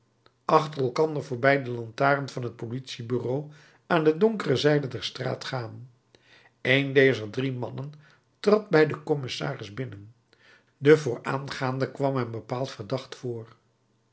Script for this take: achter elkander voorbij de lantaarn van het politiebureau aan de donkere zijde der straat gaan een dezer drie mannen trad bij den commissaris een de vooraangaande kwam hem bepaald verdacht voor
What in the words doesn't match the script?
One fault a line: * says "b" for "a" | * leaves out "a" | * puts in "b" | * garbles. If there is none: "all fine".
* says "binnen" for "een"